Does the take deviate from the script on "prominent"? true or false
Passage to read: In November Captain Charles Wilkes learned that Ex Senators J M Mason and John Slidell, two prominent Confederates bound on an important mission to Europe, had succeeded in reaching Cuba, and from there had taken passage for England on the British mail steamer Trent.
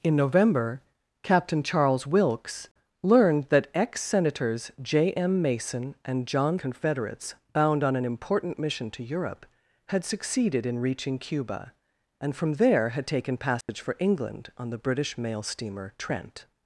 true